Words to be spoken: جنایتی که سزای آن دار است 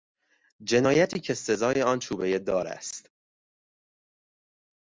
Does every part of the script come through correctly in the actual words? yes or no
no